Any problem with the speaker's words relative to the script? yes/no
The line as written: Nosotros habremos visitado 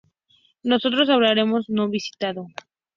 yes